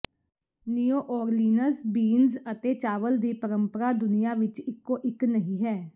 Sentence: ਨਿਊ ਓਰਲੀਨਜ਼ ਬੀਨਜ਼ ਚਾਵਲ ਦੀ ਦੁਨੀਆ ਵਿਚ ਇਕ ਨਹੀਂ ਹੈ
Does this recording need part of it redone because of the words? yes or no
yes